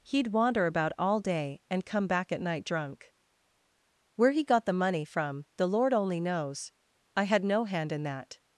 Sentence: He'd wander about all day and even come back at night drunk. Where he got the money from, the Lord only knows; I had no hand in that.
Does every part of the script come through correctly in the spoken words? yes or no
no